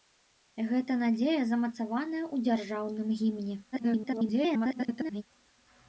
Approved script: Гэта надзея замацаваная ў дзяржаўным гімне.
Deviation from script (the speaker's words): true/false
true